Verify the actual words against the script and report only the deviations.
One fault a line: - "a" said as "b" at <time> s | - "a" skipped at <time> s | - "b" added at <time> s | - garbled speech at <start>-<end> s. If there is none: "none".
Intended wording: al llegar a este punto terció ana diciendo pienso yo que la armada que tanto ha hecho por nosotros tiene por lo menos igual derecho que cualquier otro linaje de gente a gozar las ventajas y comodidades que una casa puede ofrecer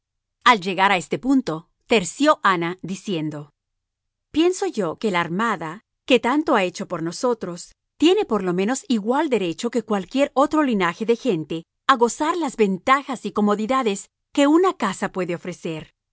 none